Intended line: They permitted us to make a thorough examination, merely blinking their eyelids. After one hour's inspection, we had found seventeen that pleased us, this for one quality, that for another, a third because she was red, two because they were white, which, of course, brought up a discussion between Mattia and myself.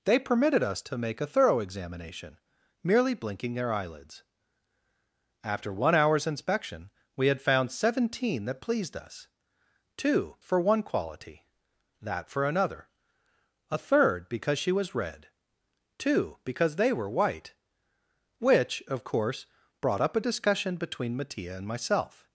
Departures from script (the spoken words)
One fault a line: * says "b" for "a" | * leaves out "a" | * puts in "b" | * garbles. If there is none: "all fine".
* says "two" for "this"